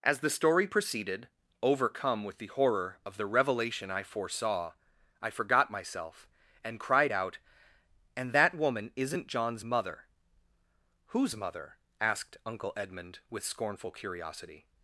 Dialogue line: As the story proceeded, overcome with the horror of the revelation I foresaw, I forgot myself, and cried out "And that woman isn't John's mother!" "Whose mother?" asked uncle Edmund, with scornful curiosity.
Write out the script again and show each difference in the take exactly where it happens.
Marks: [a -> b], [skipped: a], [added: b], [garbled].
As the story proceeded, overcome with the horror of the revelation I foresaw, I forgot myself, and cried out "And that woman isn't John's mother!" "Whose mother?" asked uncle Edmund, with scornful curiosity.